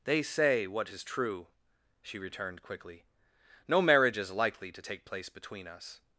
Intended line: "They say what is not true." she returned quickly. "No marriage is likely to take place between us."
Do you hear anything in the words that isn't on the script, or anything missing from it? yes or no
yes